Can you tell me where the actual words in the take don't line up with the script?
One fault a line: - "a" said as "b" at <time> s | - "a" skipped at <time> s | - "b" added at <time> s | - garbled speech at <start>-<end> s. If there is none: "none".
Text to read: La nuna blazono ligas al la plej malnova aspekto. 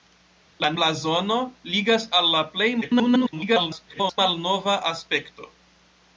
- "nuna" skipped at 0.7 s
- garbled speech at 2.8-4.2 s